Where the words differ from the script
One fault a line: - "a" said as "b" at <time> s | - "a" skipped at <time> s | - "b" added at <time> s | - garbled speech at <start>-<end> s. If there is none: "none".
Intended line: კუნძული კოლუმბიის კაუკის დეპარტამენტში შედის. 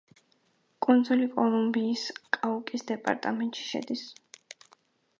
none